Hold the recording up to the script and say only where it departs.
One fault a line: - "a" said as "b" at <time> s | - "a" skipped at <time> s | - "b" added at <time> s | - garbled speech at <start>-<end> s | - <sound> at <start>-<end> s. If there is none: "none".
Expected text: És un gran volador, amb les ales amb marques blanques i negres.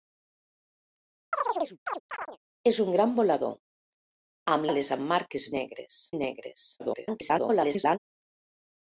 - chirp at 1.3-2.4 s
- "les" skipped at 4.7 s
- "blanques" said as "negres" at 5.6 s
- garbled speech at 6.8-8.0 s